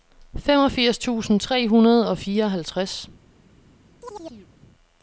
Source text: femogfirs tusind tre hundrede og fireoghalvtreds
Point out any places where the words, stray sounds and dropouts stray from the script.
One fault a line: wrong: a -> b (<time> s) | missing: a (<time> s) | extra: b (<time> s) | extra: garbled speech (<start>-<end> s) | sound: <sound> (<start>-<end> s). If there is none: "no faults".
sound: chirp (4.0-4.5 s)